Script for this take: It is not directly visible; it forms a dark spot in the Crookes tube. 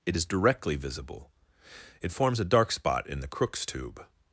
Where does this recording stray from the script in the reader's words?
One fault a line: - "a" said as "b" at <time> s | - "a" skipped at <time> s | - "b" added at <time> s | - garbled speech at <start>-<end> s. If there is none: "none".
- "not" skipped at 0.2 s